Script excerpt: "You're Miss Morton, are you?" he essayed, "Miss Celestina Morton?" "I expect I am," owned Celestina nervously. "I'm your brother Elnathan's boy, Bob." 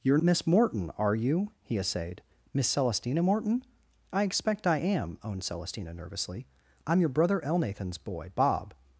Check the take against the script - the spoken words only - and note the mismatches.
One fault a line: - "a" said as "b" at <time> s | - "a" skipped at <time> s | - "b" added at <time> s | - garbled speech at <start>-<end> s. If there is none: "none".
none